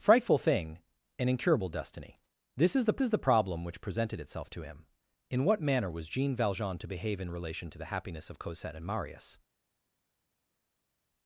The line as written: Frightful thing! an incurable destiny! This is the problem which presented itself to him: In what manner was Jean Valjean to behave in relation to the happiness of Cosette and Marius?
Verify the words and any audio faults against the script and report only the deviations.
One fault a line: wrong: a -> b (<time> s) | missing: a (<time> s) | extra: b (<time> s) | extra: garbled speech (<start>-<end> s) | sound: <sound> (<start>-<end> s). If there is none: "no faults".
extra: is the (3.0 s)